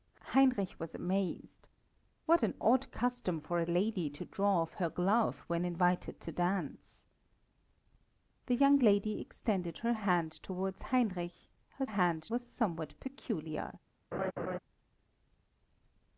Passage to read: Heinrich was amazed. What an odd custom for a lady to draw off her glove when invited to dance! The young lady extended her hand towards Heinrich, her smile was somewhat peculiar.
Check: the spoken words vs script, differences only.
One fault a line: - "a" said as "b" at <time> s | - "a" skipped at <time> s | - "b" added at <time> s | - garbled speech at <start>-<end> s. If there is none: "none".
- "smile" said as "hand" at 11.8 s